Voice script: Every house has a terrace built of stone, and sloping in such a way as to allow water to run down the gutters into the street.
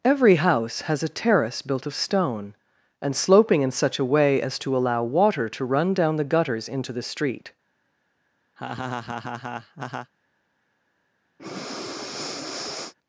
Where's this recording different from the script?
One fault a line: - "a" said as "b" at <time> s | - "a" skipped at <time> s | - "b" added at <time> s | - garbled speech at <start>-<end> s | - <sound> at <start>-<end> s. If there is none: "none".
- laugh at 8.6-10.1 s
- breath at 11.4-12.9 s